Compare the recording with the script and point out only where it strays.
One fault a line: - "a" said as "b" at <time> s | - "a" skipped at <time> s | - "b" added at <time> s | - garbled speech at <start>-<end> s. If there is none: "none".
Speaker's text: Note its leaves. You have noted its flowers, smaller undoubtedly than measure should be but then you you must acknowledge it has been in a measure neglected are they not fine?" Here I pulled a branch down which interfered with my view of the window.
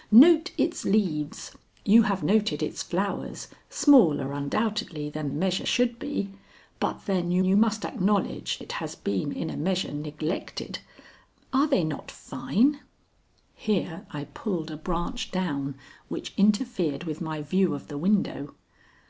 none